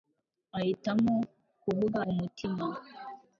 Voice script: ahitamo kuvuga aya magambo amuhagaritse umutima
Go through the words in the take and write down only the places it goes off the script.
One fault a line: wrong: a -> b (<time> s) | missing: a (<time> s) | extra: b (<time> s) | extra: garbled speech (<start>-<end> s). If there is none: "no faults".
missing: aya magambo amuhagaritse (2.0 s)